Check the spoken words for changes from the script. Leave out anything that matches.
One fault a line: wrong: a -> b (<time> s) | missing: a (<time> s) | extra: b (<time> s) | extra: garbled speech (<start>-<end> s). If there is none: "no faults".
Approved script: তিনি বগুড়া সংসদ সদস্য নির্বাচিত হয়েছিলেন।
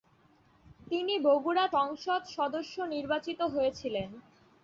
no faults